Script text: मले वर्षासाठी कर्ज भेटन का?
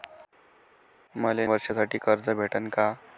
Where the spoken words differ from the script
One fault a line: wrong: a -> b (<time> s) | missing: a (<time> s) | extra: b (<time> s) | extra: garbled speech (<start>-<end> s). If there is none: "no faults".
no faults